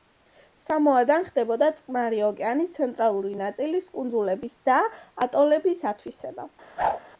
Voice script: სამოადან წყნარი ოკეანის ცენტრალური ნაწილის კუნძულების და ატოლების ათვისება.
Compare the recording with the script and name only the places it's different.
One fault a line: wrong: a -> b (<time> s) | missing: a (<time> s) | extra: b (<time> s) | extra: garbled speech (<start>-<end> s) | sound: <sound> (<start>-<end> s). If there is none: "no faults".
extra: ხდებოდა (1.3 s)
sound: whoosh (6.8-7.0 s)